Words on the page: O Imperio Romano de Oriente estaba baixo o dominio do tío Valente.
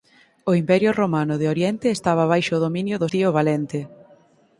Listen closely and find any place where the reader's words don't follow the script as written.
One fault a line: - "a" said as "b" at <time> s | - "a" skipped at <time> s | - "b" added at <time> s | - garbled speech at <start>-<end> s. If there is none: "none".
none